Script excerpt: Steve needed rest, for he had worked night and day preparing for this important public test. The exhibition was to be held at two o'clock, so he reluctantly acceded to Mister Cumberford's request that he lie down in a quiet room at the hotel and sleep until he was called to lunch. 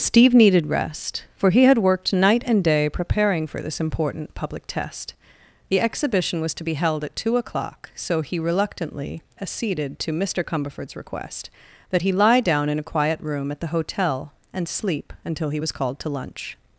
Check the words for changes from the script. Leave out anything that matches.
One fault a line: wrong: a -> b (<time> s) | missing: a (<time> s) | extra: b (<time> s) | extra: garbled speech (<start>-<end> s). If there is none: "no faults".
no faults